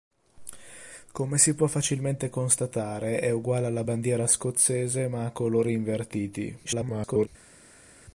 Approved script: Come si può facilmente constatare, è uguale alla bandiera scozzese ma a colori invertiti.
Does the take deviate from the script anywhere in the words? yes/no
yes